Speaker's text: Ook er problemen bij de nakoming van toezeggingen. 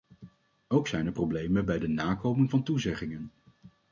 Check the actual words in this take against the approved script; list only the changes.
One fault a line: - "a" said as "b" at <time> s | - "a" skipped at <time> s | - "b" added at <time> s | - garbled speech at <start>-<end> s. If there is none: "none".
- "zijn" added at 0.9 s